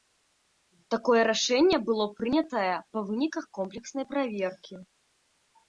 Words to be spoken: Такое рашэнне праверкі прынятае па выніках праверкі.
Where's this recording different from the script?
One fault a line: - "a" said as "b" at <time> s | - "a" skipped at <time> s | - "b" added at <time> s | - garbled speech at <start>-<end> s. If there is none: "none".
- "праверкі" said as "было" at 1.9 s
- "комплекснай" added at 3.6 s